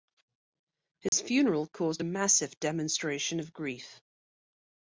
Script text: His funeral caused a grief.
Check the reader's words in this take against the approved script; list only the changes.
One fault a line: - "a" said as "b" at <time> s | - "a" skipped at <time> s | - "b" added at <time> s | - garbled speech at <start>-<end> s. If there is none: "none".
- "massive demonstration of" added at 2.0 s